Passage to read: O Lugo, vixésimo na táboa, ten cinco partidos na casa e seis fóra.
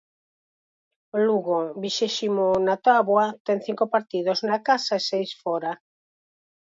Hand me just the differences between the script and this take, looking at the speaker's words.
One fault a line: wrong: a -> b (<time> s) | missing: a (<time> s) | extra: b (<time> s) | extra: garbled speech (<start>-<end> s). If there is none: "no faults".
no faults